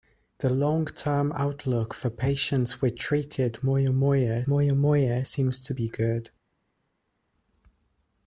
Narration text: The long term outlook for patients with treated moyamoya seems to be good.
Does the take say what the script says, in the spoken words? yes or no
no